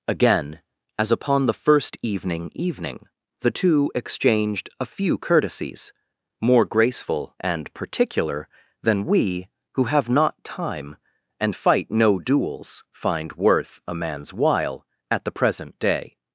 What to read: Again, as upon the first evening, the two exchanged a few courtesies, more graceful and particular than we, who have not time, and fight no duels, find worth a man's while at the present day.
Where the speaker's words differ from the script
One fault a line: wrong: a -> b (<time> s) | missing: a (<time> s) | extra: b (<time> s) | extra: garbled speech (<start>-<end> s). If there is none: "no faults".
extra: evening (2.5 s)